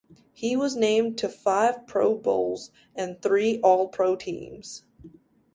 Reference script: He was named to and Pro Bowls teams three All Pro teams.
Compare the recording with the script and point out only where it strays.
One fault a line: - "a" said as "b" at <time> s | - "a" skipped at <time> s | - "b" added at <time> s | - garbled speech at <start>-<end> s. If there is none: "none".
- "and" said as "five" at 1.3 s
- "teams" said as "and" at 2.9 s